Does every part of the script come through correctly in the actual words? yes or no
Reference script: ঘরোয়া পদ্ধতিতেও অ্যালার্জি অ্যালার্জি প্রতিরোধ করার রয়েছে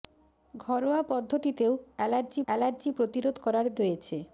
yes